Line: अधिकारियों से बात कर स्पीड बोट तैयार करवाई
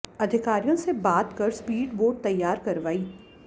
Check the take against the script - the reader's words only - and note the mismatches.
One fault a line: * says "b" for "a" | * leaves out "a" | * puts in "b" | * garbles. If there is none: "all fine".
all fine